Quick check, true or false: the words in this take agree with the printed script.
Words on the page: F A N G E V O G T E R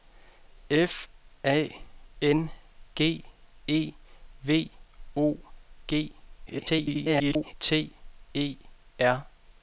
false